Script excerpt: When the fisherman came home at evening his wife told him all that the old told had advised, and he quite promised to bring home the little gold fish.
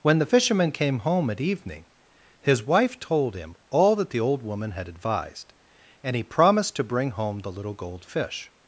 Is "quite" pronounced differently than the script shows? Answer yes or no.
yes